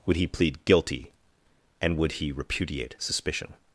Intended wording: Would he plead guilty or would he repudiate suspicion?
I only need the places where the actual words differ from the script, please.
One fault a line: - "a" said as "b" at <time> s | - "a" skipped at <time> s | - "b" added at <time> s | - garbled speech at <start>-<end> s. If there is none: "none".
- "or" said as "and" at 1.8 s